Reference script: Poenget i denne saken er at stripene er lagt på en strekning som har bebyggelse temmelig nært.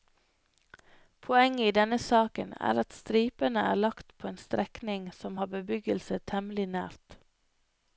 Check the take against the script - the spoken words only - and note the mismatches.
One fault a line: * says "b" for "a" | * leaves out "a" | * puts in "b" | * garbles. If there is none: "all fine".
all fine